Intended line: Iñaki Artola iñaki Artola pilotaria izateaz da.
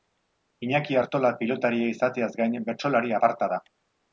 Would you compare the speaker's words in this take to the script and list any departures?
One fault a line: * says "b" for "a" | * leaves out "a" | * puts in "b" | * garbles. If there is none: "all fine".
* says "pilotaria izateaz gain bertsolari aparta" for "iñaki Artola pilotaria izateaz"